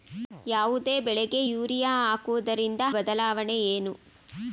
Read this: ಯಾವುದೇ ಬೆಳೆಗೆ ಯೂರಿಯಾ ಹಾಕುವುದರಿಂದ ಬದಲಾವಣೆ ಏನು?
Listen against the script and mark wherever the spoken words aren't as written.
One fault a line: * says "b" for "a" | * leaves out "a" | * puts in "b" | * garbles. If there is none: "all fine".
all fine